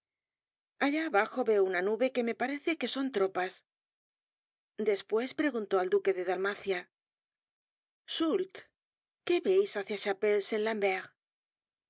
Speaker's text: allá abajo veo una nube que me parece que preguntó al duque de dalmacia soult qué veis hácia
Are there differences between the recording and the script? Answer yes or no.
yes